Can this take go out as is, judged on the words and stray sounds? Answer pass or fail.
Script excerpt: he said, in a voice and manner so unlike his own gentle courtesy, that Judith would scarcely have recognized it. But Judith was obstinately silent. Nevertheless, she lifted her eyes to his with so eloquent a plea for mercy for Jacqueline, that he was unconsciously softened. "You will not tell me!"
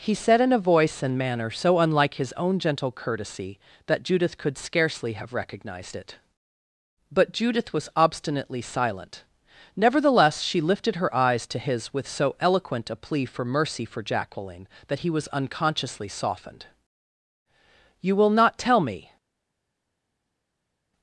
fail